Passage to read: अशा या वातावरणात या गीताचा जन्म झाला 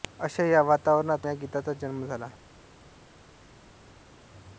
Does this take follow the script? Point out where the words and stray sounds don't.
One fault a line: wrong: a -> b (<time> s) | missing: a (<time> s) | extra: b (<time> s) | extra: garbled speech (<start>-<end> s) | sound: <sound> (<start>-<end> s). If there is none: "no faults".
no faults